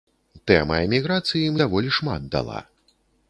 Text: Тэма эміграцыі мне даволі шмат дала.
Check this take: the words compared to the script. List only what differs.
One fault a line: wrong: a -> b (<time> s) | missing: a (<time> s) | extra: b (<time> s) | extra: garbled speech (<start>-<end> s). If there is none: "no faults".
missing: мне (1.5 s)